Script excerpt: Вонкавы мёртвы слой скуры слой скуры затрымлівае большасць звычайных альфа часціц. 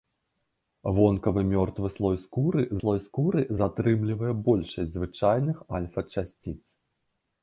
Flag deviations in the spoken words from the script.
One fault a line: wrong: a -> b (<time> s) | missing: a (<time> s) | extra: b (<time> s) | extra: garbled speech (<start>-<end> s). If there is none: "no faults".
no faults